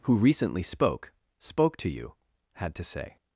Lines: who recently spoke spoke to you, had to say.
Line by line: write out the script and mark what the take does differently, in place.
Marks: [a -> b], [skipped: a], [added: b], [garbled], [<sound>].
who recently spoke spoke to you, had to say.